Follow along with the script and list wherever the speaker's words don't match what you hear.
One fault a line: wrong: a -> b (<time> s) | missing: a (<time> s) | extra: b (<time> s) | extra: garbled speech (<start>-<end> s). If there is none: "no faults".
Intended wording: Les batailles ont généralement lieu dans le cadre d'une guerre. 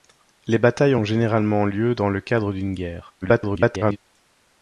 extra: garbled speech (3.2-4.0 s)